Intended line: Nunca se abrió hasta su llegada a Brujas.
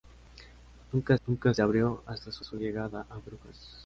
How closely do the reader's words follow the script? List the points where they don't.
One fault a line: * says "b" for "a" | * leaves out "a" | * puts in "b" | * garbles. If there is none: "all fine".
* puts in "nunca"
* puts in "su"